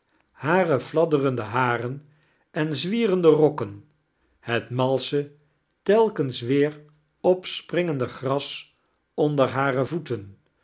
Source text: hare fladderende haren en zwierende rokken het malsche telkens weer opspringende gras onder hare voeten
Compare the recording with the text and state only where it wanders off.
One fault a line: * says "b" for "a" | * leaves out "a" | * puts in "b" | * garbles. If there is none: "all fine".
all fine